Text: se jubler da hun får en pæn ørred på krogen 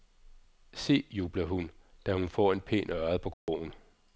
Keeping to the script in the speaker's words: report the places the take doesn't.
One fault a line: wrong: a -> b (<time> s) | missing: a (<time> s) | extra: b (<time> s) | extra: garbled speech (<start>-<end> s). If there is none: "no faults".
extra: hun (1.4 s)